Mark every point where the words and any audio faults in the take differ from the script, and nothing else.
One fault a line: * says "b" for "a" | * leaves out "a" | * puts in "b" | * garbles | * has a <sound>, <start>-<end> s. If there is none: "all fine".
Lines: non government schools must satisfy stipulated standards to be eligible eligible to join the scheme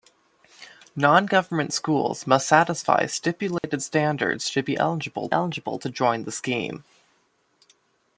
* has a dropout, 3.6-3.6 s